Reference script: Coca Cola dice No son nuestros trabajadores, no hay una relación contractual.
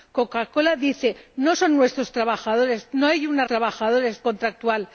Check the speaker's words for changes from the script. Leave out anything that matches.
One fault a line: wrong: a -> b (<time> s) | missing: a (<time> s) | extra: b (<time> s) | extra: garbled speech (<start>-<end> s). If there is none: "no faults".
wrong: relación -> trabajadores (3.5 s)